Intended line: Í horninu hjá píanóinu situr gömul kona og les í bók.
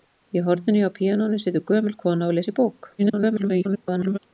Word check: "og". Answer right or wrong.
right